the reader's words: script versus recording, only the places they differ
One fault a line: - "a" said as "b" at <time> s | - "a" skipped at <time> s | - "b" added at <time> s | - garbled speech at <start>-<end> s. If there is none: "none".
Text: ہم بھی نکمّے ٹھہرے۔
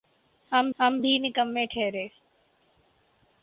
- "ہم" added at 0.8 s